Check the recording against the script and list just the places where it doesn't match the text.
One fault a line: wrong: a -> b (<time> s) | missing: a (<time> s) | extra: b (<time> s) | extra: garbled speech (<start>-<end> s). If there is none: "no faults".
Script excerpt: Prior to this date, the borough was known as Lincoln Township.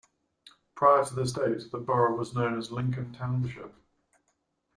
no faults